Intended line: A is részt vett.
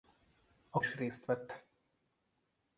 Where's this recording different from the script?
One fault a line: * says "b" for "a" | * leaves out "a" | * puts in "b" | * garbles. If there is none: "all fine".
all fine